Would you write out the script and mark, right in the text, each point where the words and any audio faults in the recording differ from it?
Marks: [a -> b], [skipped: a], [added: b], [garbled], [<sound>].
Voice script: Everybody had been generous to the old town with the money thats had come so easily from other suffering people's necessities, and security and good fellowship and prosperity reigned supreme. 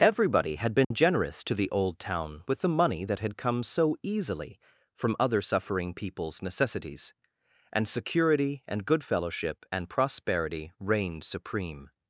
Everybody had been [dropout] generous to the old town with the money [thats -> that] had come so easily from other suffering people's necessities, and security and good fellowship and prosperity reigned supreme.